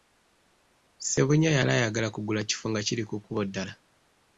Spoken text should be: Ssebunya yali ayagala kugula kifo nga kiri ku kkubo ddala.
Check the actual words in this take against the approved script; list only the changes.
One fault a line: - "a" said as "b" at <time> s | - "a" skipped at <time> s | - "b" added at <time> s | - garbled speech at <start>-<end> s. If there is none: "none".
none